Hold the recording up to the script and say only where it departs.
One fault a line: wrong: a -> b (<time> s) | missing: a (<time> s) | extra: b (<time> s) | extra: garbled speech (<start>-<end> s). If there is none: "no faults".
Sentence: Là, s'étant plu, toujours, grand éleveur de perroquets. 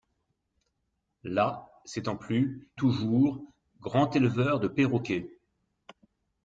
no faults